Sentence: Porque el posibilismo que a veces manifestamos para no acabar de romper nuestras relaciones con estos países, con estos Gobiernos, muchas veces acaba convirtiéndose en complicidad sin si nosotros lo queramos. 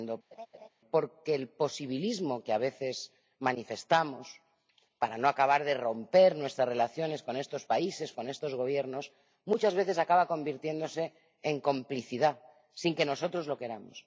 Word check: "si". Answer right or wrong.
wrong